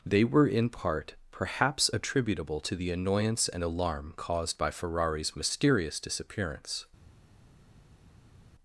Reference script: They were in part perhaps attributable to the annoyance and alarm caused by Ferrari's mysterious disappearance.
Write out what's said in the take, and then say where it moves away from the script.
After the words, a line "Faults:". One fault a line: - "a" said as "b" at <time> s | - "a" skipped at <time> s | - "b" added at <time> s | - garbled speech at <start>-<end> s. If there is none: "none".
They were in part perhaps attributable to the annoyance and alarm caused by Ferrari's mysterious disappearance.
Faults:
none